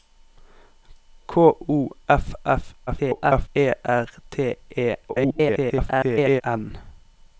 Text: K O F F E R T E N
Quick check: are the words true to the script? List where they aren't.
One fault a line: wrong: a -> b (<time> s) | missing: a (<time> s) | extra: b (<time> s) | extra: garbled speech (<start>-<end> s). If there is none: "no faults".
extra: garbled speech (2.9-3.5 s)
extra: garbled speech (5.1-6.4 s)